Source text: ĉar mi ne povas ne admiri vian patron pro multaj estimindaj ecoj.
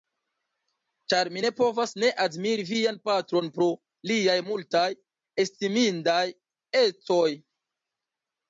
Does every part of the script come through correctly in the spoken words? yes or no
no